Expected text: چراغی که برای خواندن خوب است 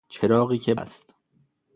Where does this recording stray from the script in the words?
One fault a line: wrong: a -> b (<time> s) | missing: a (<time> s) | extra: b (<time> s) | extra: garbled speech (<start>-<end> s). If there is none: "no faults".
missing: برای خواندن خوب (0.8 s)